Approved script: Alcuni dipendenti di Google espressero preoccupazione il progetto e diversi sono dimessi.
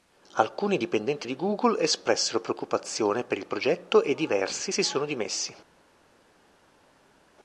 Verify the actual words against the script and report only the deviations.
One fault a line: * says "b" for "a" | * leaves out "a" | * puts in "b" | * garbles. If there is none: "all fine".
* puts in "per"
* puts in "si"